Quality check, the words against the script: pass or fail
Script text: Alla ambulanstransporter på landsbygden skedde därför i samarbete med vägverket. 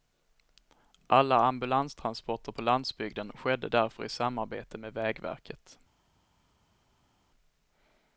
pass